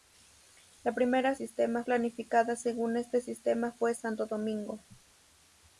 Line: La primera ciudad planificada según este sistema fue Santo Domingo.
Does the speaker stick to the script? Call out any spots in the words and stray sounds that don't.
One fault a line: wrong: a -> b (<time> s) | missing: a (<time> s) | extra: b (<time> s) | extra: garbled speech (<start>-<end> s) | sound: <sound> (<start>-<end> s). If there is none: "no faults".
wrong: ciudad -> sistema (1.3 s)